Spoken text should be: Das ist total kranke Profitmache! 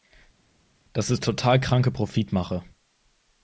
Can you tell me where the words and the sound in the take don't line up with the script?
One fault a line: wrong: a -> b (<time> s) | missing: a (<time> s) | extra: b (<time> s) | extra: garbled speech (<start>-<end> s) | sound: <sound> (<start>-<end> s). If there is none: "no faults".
no faults